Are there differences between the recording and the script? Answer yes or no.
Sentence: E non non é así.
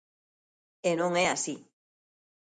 yes